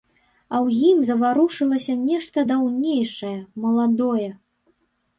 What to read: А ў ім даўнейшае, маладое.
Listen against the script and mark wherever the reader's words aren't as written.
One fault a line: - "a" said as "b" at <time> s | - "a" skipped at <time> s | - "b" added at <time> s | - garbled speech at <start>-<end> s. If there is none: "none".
- "заварушылася нешта" added at 1.1 s